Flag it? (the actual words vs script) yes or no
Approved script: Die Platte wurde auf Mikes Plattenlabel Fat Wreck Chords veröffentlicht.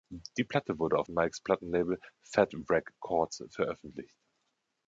no